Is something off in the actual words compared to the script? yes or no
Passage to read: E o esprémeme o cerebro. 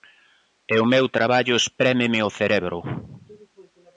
yes